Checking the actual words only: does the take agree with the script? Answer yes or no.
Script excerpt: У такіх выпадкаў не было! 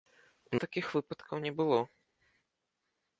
yes